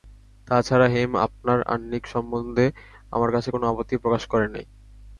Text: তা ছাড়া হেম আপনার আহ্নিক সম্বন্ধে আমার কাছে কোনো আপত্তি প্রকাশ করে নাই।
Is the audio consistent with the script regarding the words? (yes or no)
yes